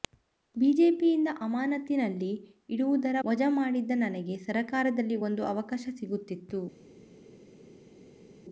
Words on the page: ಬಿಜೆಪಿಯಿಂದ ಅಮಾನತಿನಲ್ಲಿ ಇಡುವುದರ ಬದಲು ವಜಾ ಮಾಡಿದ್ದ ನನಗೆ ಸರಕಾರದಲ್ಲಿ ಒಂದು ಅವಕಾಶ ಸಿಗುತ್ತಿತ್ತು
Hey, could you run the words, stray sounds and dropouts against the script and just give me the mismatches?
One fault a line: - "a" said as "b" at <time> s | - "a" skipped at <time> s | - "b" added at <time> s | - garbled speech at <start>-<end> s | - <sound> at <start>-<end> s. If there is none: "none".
- "ಬದಲು" skipped at 3.2 s